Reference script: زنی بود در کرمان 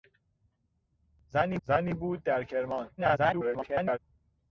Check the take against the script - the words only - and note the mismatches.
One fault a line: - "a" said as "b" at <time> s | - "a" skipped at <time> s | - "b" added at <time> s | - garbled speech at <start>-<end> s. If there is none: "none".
- "زنی" added at 1.6 s
- garbled speech at 3.0-4.0 s